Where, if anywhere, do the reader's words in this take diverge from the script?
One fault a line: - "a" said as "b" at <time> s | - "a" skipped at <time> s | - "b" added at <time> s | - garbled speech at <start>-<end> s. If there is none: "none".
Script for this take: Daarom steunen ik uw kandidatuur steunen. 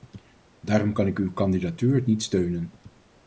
- "steunen" said as "kan" at 0.9 s
- "niet" added at 2.1 s